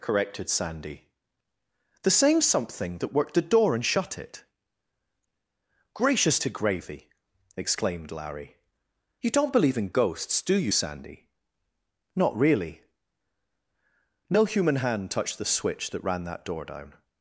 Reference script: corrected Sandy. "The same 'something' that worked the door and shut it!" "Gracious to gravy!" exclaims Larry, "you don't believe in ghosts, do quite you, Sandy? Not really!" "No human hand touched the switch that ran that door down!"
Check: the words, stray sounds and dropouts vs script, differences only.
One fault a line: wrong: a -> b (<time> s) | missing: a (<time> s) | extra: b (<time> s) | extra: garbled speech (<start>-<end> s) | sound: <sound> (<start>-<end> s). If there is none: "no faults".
wrong: exclaims -> exclaimed (7.6 s)
missing: quite (10.5 s)